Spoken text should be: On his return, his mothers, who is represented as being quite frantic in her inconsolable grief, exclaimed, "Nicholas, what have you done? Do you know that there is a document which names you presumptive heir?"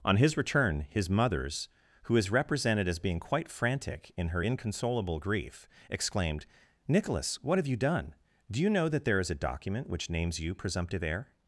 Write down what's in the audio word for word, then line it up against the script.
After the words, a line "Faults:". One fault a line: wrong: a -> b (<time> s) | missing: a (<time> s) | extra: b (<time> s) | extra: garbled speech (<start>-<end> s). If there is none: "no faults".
On his return, his mothers, who is represented as being quite frantic in her inconsolable grief, exclaimed, "Nicholas, what have you done? Do you know that there is a document which names you presumptive heir?"
Faults:
no faults